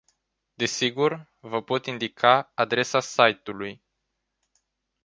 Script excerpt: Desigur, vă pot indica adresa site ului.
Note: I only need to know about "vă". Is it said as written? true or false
true